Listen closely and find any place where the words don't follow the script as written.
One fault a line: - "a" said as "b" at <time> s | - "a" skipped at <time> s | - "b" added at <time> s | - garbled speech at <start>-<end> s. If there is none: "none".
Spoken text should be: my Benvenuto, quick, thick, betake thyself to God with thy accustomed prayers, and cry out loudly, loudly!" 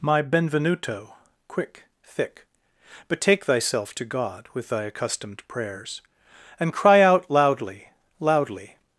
none